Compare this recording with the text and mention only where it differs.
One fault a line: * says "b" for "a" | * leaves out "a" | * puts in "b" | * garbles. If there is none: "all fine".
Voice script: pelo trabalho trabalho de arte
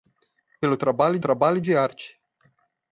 all fine